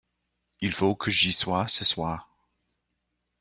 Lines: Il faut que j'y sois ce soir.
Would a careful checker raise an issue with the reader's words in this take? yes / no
no